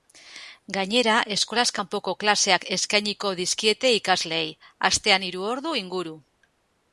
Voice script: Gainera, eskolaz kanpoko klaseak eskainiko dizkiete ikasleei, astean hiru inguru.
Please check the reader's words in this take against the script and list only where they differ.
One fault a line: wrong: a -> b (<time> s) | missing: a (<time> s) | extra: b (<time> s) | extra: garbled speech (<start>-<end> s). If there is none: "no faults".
extra: ordu (5.6 s)